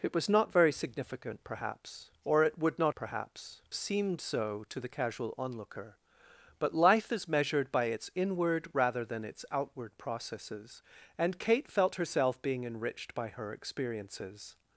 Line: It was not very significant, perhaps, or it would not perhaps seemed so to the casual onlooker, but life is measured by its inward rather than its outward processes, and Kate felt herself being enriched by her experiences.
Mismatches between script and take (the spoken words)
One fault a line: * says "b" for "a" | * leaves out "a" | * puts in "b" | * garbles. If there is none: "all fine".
all fine